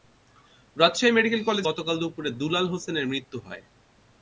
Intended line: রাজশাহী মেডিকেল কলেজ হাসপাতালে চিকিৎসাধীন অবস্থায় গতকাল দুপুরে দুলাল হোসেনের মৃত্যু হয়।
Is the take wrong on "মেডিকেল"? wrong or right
right